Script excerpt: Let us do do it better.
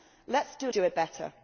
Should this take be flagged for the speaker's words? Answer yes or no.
no